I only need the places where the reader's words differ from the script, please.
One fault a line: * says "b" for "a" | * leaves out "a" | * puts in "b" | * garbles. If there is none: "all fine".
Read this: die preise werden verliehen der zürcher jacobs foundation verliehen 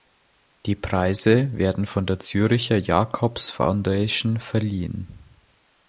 * says "von" for "verliehen"